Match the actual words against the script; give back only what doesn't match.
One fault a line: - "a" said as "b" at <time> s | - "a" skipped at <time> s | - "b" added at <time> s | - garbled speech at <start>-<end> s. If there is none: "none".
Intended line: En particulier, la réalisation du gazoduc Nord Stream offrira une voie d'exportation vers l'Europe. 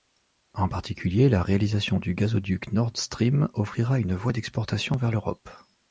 none